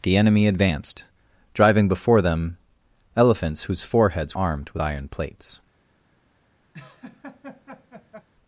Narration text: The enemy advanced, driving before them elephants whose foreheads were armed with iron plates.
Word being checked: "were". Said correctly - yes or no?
no